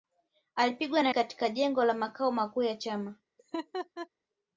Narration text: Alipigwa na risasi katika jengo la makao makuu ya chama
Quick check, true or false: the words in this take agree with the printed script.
false